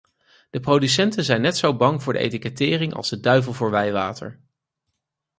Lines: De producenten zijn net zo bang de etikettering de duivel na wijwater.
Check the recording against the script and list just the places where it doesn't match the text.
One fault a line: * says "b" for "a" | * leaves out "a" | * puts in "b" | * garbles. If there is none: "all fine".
* puts in "voor"
* puts in "als"
* says "voor" for "na"